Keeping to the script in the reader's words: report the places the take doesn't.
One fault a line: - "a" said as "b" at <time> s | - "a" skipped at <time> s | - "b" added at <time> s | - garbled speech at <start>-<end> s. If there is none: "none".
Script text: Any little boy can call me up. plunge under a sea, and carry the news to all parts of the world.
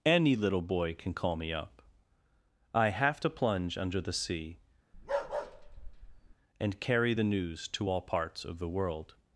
- "I have to" added at 2.7 s
- "a" said as "the" at 4.0 s